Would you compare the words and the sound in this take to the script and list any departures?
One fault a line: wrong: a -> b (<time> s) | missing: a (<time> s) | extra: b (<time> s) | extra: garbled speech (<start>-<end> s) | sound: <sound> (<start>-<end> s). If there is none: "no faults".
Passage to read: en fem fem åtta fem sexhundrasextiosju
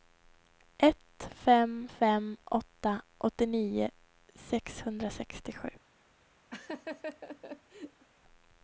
wrong: en -> ett (0.8 s)
wrong: fem -> åttionio (3.2 s)
sound: laugh (6.5-8.1 s)